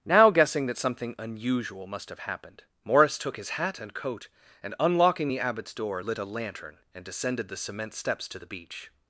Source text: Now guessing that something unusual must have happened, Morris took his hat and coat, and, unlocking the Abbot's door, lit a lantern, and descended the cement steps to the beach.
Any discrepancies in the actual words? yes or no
no